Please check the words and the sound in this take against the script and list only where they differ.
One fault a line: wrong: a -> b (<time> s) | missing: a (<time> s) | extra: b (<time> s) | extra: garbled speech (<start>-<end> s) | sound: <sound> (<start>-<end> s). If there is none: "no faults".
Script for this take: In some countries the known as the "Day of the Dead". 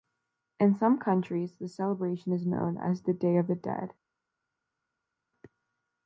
extra: celebration is (1.7 s)